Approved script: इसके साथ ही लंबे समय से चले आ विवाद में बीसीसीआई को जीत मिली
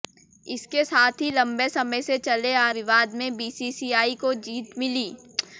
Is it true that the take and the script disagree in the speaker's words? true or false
false